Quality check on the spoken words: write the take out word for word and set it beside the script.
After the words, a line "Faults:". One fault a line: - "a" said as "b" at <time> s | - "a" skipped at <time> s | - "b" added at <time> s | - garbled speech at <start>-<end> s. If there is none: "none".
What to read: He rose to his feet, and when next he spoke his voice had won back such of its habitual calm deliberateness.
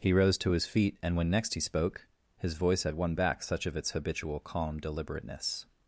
He rose to his feet, and when next he spoke his voice had won back such of its habitual calm deliberateness.
Faults:
none